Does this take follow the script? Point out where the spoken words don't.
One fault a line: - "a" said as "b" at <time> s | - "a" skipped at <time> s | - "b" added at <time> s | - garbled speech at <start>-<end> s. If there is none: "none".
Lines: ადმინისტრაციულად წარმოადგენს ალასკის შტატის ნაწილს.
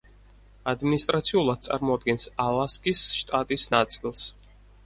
none